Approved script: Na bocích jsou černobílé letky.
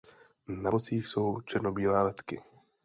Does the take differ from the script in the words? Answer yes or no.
no